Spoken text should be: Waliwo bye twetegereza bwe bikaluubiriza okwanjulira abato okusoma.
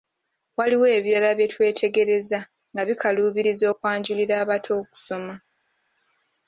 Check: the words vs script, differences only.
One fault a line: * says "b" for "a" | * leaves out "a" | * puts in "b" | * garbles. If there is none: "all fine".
* puts in "ebirala"
* says "nga" for "bwe"